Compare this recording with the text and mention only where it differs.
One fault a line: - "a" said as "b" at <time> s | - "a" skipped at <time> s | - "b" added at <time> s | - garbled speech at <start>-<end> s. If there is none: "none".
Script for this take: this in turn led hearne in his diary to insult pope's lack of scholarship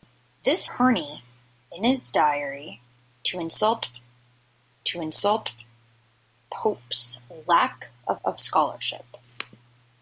- "in turn led" skipped at 0.7 s
- "to insult" added at 4.8 s
- "of" added at 8.2 s